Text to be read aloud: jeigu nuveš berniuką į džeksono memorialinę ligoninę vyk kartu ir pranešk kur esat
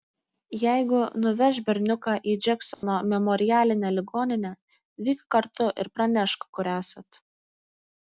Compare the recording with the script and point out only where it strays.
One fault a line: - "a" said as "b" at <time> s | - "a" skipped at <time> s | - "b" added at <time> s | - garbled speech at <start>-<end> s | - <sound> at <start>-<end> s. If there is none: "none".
- dropout at 2.7-2.8 s